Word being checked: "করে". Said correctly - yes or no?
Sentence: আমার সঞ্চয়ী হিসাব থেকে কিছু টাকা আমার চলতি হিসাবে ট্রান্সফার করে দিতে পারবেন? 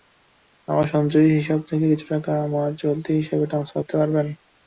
no